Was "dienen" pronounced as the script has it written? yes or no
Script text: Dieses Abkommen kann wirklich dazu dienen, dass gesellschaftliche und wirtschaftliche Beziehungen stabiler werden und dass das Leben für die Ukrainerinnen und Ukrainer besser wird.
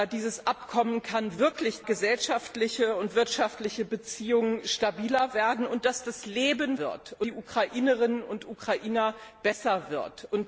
no